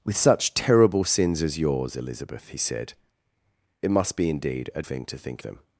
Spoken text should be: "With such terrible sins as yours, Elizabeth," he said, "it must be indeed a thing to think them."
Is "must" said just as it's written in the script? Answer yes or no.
yes